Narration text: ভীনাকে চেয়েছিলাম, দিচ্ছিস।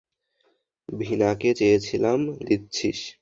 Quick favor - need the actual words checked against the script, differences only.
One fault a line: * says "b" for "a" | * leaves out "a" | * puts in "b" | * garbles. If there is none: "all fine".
all fine